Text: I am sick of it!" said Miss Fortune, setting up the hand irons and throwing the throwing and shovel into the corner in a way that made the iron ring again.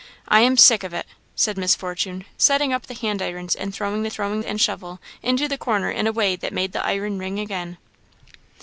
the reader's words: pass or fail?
pass